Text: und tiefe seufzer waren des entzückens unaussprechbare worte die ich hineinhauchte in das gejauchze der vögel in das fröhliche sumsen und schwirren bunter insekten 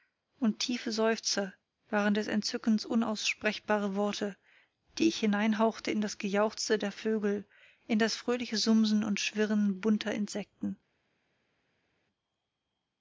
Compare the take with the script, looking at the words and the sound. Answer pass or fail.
pass